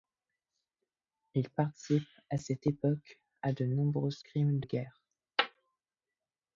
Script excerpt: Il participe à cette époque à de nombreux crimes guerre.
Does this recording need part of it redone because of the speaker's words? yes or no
no